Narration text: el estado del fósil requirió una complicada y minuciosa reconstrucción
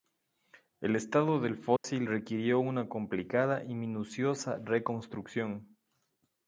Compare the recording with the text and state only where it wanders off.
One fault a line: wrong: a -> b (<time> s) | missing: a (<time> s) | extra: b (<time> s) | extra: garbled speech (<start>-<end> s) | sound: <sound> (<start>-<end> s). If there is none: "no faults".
sound: dropout (1.8-1.8 s)